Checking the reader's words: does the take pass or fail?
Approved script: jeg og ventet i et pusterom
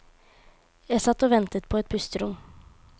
fail